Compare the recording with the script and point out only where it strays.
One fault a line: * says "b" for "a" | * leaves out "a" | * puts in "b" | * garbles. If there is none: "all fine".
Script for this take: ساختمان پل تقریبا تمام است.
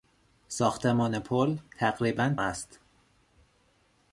* leaves out "تمام"